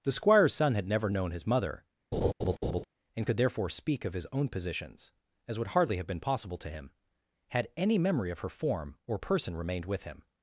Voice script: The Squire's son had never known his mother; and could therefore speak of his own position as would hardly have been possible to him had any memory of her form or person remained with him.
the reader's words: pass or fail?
fail